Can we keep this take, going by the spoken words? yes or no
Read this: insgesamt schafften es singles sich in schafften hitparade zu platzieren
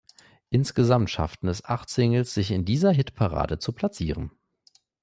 no